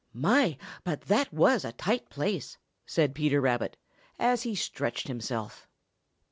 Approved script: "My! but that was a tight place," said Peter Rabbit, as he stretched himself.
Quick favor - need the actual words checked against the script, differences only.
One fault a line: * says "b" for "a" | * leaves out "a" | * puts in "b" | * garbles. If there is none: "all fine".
all fine